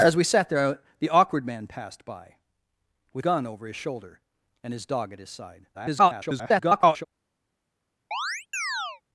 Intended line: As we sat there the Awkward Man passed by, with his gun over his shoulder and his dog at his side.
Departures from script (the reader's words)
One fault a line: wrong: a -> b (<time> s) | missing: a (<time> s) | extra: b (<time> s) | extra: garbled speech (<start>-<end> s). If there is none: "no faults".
missing: his (3.2 s)
extra: garbled speech (5.7-7.1 s)